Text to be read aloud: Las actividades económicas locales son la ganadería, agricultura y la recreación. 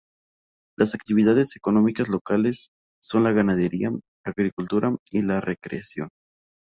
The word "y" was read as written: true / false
true